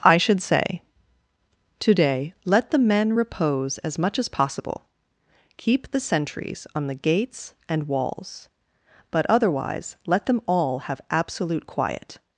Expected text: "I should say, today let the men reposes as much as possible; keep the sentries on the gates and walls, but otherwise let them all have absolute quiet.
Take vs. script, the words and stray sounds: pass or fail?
fail